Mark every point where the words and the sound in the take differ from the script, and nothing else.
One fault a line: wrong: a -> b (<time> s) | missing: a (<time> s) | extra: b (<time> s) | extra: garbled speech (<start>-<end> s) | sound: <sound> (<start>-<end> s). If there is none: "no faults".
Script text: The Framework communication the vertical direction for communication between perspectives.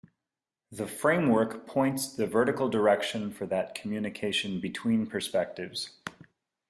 wrong: communication -> points (1.7 s)
extra: that (3.5 s)